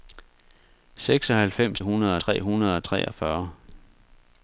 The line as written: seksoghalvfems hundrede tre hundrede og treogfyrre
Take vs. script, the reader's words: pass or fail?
pass